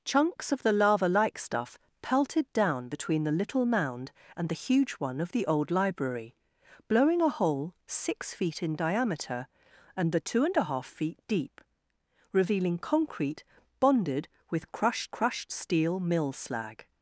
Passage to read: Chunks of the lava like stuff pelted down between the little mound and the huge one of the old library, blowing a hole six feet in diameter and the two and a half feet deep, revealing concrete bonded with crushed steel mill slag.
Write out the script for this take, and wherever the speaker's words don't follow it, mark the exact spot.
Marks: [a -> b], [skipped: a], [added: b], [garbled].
Chunks of the lava like stuff pelted down between the little mound and the huge one of the old library, blowing a hole six feet in diameter and the two and a half feet deep, revealing concrete bonded with crushed [added: crushed] steel mill slag.